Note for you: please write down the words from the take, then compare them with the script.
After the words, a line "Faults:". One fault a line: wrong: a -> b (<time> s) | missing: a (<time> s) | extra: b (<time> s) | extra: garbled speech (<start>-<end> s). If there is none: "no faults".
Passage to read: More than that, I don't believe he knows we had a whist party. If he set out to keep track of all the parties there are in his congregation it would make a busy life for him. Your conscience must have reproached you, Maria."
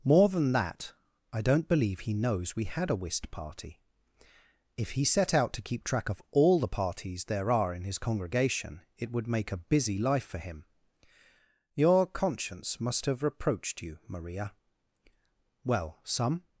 More than that, I don't believe he knows we had a whist party. If he set out to keep track of all the parties there are in his congregation it would make a busy life for him. Your conscience must have reproached you, Maria." "Well, some
Faults:
extra: Well some (15.6 s)